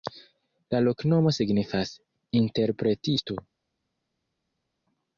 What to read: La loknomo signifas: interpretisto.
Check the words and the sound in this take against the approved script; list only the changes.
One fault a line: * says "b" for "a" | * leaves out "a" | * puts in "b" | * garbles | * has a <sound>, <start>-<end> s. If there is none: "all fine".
all fine